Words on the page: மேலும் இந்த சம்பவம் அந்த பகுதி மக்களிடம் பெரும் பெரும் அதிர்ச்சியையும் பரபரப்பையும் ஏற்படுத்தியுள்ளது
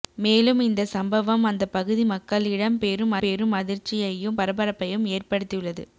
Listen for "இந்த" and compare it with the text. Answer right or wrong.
right